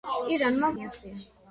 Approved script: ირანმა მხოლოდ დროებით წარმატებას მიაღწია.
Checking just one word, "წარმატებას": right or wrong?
wrong